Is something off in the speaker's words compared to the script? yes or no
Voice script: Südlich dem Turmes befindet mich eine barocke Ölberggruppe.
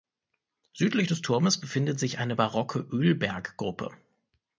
yes